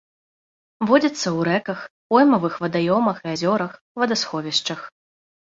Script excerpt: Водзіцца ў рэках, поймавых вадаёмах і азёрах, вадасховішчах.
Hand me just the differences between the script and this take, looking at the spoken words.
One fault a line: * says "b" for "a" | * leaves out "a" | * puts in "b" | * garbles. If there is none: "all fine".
all fine